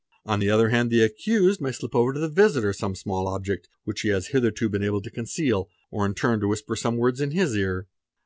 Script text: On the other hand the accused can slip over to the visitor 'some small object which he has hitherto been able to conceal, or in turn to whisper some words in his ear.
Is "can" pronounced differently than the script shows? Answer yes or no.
yes